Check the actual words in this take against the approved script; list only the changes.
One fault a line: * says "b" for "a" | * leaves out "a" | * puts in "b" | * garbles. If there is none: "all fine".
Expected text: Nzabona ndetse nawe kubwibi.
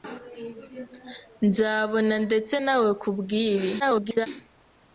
* garbles